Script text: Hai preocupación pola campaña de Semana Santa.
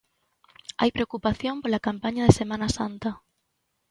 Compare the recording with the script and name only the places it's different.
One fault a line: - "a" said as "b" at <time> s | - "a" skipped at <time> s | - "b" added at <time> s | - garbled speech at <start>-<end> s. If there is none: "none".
none